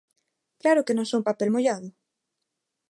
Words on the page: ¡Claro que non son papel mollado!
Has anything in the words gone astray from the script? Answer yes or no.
no